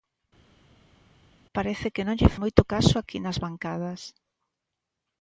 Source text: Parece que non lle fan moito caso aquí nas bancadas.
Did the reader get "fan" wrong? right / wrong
wrong